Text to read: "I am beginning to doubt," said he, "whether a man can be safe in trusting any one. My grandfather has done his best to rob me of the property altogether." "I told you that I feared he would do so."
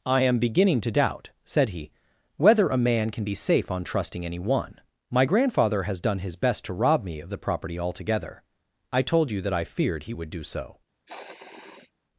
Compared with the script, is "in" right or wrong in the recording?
wrong